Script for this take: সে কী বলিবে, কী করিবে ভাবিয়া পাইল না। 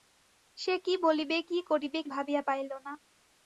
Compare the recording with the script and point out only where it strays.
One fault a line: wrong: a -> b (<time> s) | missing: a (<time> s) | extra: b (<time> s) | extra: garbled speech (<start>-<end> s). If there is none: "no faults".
no faults